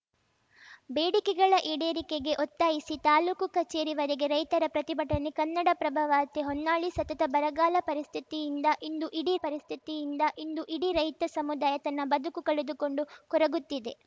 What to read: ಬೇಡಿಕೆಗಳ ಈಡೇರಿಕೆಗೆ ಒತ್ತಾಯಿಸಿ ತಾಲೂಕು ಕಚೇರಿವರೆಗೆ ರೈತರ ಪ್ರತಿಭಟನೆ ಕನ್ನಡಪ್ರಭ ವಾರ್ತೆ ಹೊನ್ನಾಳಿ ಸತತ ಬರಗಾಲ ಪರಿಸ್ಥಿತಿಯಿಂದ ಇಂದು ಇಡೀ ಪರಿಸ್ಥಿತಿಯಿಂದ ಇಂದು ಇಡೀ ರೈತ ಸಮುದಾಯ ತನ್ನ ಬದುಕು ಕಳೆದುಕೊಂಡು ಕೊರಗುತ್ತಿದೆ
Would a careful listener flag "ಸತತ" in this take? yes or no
no